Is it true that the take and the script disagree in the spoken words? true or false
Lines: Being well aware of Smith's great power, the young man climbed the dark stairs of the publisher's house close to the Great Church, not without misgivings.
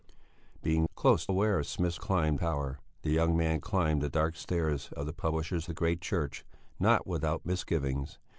true